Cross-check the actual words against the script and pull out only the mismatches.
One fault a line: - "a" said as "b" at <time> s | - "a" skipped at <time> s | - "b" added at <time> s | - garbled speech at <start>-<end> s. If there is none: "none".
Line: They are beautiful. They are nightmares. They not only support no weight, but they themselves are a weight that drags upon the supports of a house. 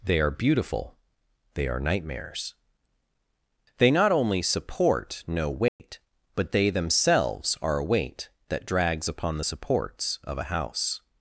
none